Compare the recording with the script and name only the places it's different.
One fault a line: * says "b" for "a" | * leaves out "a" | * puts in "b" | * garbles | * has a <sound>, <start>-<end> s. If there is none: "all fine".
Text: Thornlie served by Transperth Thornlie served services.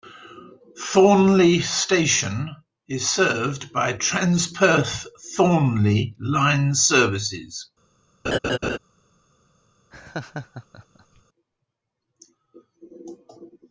* puts in "station is"
* says "line" for "served"
* has a laugh, 8.2-8.8 s
* has a laugh, 9.9-11.2 s